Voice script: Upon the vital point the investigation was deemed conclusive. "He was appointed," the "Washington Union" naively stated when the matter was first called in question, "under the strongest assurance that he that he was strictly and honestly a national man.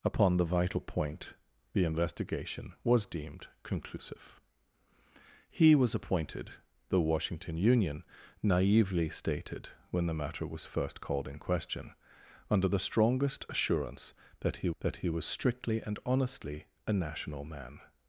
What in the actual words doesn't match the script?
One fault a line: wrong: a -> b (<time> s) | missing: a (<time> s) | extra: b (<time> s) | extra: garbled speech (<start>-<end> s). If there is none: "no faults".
no faults